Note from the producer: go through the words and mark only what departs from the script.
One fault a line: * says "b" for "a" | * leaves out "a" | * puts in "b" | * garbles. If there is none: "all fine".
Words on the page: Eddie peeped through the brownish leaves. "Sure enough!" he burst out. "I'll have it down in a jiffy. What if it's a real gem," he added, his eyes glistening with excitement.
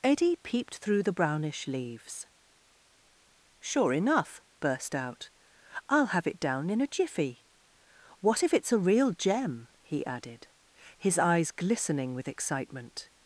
* leaves out "he"